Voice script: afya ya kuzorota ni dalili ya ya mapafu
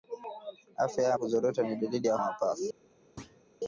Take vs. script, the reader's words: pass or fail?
pass